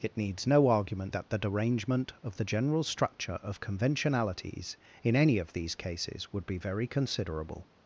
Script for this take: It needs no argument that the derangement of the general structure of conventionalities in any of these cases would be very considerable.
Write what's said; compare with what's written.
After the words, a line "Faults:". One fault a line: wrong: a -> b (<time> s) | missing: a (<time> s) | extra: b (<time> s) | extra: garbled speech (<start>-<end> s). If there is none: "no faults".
It needs no argument that the derangement of the general structure of conventionalities in any of these cases would be very considerable.
Faults:
no faults